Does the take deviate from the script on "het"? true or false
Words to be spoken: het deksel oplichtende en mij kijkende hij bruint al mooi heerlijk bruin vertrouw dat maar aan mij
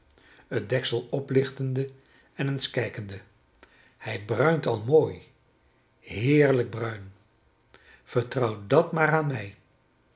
false